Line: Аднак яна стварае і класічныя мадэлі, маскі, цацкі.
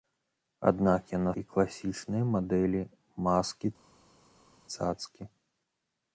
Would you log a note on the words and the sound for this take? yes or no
yes